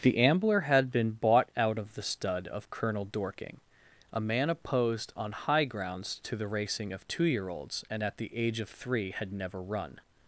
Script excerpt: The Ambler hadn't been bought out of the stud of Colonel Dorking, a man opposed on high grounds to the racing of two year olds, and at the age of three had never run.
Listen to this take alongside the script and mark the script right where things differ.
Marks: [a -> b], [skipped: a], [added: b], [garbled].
The Ambler [hadn't -> had] been bought out of the stud of Colonel Dorking, a man opposed on high grounds to the racing of two year olds, and at the age of three had never run.